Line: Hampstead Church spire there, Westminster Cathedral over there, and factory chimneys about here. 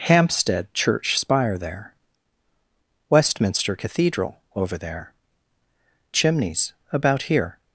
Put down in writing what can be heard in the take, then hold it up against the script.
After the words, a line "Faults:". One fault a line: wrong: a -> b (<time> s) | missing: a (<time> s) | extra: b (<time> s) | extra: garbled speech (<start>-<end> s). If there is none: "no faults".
Hampstead Church spire there, Westminster Cathedral over there, chimneys about here.
Faults:
missing: and factory (5.1 s)